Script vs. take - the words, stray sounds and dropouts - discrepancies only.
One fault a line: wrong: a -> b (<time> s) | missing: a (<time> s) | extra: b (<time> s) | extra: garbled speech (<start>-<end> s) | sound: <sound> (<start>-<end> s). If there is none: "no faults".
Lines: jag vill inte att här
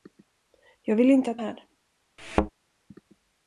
sound: thud (2.2-2.5 s)